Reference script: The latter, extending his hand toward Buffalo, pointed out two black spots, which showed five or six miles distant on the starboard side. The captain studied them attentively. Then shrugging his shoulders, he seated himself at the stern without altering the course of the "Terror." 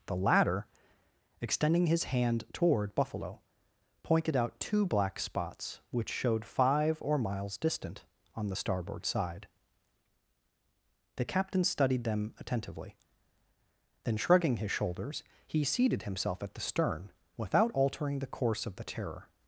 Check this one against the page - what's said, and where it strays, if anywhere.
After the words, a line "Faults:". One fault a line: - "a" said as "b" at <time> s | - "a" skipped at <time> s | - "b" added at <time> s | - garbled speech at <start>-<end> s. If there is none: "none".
The latter, extending his hand toward Buffalo, pointed out two black spots, which showed five or miles distant on the starboard side. The captain studied them attentively. Then shrugging his shoulders, he seated himself at the stern without altering the course of the "Terror."
Faults:
- "six" skipped at 7.2 s